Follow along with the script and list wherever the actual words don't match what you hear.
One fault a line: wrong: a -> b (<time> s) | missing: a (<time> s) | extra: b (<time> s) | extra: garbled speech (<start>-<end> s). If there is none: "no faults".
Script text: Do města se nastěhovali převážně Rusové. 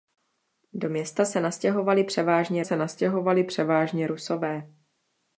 extra: se nastěhovali převážně (2.6 s)